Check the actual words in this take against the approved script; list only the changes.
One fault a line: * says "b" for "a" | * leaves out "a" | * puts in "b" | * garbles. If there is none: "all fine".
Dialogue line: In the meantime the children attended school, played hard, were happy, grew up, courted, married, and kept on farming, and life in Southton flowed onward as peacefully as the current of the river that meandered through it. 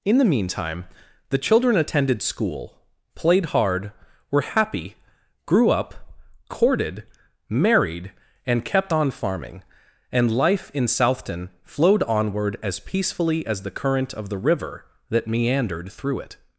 all fine